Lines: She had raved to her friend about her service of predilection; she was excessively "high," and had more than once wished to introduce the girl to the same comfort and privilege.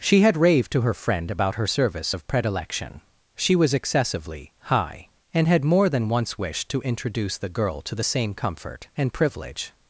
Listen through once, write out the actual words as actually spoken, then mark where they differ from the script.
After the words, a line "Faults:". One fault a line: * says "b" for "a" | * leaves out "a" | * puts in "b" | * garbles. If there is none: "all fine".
She had raved to her friend about her service of predilection; she was excessively "high," and had more than once wished to introduce the girl to the same comfort and privilege.
Faults:
all fine